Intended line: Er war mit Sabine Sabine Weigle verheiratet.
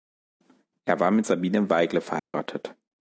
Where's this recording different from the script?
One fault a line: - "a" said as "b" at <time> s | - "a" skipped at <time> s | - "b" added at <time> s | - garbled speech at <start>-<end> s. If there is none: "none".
- "Sabine" skipped at 1.7 s